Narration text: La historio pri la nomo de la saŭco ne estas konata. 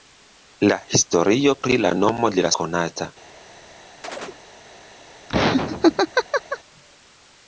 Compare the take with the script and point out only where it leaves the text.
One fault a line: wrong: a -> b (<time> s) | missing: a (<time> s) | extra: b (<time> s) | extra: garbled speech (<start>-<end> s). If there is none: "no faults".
missing: saŭco ne estas (2.5 s)